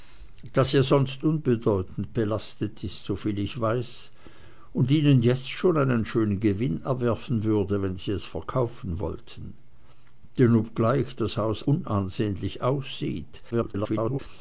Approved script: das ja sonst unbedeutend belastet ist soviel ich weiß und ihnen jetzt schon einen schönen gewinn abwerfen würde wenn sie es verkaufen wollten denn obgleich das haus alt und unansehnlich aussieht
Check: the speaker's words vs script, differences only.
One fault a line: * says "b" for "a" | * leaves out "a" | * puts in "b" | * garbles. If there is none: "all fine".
* leaves out "alt und"
* garbles